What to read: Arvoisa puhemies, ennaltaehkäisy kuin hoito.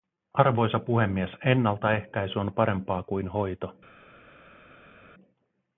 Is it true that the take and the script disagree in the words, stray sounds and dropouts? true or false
true